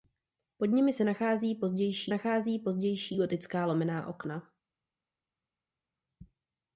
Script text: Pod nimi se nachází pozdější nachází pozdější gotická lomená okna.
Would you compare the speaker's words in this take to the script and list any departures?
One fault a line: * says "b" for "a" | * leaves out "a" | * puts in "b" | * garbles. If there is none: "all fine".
all fine